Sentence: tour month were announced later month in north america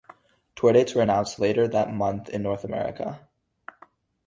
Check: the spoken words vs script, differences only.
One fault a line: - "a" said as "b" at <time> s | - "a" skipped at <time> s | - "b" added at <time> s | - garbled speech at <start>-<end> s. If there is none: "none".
- "month" said as "dates" at 0.7 s
- "that" added at 1.7 s